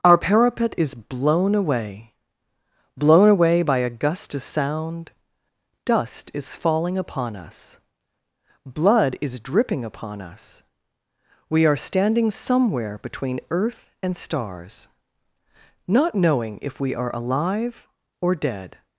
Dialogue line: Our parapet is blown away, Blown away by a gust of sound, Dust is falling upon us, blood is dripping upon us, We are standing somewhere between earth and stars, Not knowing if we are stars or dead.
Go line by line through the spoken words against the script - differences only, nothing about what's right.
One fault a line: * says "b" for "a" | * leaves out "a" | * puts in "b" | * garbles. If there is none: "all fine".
* says "alive" for "stars"